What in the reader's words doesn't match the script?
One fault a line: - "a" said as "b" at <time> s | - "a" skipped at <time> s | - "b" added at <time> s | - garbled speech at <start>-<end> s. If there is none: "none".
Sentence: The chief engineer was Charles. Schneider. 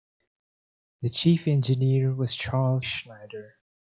none